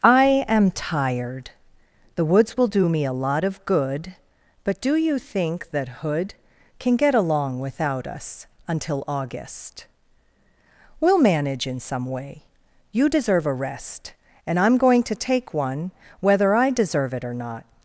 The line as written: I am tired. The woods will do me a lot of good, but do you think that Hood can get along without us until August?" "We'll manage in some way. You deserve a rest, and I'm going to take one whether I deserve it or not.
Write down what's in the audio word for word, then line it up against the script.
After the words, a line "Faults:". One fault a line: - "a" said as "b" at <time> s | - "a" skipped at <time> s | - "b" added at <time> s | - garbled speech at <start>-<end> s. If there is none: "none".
I am tired. The woods will do me a lot of good, but do you think that Hood can get along without us until August?" "We'll manage in some way. You deserve a rest, and I'm going to take one whether I deserve it or not.
Faults:
none